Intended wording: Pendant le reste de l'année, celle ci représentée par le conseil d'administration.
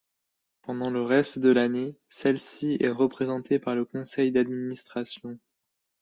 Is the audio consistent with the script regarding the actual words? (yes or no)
no